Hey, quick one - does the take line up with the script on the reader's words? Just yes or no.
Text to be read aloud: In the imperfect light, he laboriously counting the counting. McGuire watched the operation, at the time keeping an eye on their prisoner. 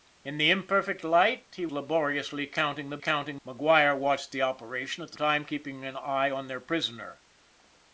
yes